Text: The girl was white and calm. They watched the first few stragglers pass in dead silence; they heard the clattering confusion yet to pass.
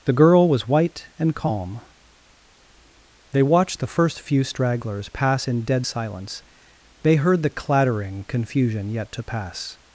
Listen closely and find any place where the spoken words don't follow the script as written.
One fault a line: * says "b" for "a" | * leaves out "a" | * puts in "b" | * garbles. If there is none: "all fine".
all fine